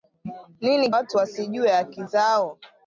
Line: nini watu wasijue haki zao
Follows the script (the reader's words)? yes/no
yes